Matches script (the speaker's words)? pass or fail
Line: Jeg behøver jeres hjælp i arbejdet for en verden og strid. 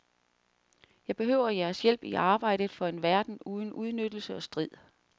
fail